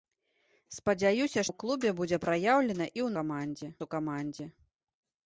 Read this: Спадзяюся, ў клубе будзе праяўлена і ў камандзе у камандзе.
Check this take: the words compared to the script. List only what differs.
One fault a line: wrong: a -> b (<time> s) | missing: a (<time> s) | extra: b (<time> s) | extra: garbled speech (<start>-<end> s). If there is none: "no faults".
no faults